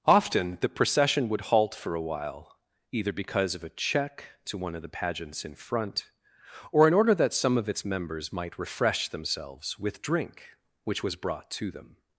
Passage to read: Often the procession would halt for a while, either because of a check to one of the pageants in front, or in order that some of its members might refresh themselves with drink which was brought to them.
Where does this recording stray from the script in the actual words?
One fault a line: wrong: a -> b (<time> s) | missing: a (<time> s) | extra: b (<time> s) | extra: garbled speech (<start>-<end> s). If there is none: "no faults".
no faults